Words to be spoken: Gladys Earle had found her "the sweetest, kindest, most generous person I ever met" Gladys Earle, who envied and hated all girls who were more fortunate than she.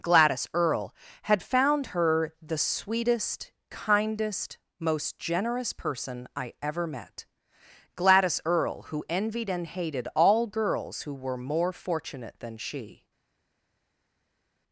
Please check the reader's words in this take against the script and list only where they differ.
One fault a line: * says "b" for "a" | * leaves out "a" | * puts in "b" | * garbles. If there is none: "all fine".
all fine